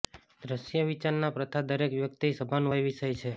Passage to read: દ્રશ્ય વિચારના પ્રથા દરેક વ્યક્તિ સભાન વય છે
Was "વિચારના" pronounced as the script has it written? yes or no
yes